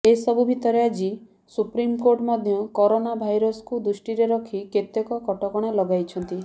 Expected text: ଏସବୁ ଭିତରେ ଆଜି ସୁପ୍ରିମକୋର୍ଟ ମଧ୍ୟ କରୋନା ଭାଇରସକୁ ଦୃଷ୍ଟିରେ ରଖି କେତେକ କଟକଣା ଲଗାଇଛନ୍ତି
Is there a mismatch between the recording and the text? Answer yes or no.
no